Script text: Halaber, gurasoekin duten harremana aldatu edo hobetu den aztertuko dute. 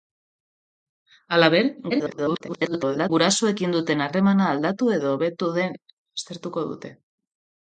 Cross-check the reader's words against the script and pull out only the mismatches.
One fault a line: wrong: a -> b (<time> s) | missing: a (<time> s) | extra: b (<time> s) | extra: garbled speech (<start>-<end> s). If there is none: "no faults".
extra: garbled speech (1.9-3.1 s)